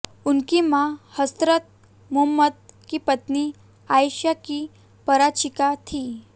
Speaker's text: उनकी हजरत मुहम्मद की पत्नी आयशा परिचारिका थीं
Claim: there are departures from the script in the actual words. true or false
true